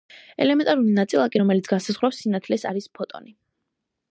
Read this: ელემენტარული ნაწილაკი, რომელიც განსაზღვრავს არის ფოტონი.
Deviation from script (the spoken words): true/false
true